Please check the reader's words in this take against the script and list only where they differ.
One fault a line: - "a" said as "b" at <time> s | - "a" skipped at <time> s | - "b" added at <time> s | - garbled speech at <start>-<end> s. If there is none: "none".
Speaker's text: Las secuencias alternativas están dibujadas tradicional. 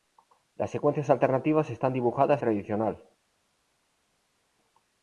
none